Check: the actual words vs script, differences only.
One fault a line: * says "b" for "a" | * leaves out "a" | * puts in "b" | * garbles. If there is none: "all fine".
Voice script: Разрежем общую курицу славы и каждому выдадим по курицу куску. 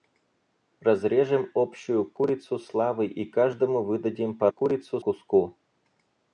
all fine